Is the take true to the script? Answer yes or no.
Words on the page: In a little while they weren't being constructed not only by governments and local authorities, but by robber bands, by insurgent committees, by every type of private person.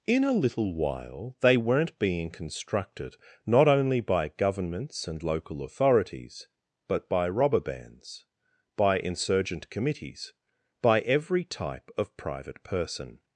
yes